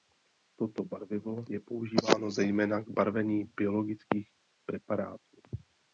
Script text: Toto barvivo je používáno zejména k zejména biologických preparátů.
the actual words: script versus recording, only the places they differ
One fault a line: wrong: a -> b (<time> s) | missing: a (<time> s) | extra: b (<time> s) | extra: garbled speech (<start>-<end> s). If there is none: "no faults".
wrong: zejména -> barvení (2.9 s)